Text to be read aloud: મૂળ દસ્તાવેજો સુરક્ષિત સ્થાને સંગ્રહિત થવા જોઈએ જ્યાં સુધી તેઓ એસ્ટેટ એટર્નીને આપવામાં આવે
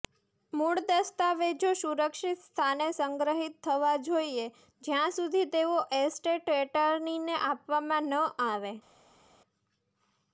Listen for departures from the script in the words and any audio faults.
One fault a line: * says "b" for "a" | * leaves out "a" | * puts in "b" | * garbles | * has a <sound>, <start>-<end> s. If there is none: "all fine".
* puts in "ન"